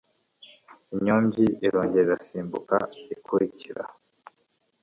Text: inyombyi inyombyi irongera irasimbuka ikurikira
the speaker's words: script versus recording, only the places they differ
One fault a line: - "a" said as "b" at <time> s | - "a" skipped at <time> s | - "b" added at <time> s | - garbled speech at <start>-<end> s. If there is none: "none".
- "inyombyi" skipped at 1.4 s